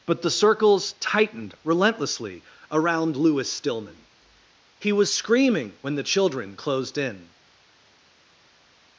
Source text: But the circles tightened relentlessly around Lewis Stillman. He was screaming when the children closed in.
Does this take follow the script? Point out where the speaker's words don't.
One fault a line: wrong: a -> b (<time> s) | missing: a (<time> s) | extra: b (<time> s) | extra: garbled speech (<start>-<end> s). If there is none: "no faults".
no faults